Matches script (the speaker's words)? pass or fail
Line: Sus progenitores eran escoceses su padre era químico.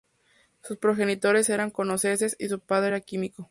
fail